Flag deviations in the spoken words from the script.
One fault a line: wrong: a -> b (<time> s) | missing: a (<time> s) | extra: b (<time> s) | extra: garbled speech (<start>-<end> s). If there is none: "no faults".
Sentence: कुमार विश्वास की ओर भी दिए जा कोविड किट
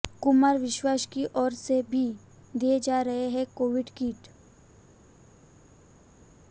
extra: से (1.5 s)
extra: रहे हैं (3.0 s)